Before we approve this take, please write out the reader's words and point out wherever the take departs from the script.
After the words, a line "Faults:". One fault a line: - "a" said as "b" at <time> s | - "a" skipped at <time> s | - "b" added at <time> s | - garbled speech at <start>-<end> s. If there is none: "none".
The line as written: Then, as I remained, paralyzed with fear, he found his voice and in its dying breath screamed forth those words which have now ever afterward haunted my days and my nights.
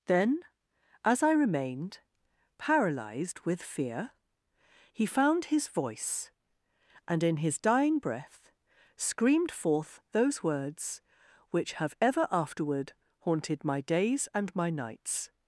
Then, as I remained, paralyzed with fear, he found his voice and in his dying breath screamed forth those words which have ever afterward haunted my days and my nights.
Faults:
- "its" said as "his" at 7.4 s
- "now" skipped at 11.9 s